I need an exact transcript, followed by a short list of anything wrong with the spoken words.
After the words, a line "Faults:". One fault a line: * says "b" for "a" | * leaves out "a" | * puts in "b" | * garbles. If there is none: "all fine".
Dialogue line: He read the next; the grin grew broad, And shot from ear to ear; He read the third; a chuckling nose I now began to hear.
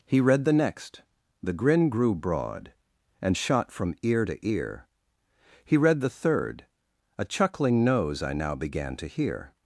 He read the next; the grin grew broad, And shot from ear to ear; He read the third; a chuckling nose I now began to hear.
Faults:
all fine